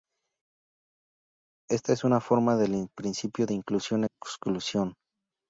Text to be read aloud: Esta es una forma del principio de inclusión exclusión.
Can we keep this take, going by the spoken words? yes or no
yes